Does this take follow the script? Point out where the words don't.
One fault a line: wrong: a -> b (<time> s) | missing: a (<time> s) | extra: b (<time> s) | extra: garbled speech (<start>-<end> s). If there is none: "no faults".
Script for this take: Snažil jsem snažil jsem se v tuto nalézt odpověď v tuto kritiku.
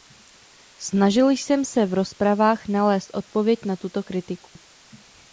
missing: snažil jsem (1.6 s)
wrong: tuto -> rozpravách (1.9 s)
wrong: v -> na (3.6 s)